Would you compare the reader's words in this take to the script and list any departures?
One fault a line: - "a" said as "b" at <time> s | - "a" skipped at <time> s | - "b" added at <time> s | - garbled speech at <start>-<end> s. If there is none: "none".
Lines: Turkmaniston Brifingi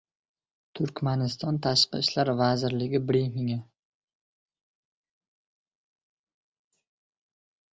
- "Tashqi ishlar vazirligi" added at 1.6 s